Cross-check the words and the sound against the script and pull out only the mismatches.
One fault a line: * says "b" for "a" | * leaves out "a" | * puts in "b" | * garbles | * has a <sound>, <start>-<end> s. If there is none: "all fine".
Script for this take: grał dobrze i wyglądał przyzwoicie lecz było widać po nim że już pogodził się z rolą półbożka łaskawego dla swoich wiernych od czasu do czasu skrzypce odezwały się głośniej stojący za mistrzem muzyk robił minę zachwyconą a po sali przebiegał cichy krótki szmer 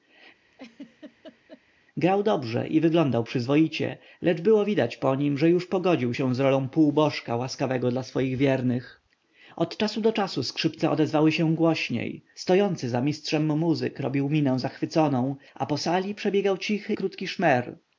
* has a laugh, 0.5-1.6 s